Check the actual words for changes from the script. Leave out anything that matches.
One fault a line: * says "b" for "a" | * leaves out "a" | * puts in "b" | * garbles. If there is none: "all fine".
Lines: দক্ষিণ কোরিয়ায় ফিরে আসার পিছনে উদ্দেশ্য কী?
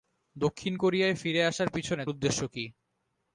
all fine